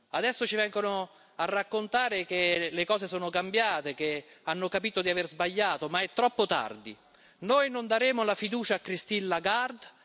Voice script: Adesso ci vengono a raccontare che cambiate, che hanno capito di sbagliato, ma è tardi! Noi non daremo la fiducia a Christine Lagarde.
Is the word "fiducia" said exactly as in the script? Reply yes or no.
yes